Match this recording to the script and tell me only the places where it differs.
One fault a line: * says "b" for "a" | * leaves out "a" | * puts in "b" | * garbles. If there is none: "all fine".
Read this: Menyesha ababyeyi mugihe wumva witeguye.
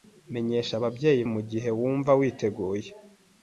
all fine